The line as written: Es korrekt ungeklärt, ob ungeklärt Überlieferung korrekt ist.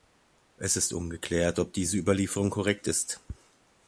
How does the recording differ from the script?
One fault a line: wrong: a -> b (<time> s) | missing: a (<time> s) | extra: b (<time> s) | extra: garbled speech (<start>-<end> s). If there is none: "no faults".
wrong: korrekt -> ist (0.8 s)
wrong: ungeklärt -> diese (1.7 s)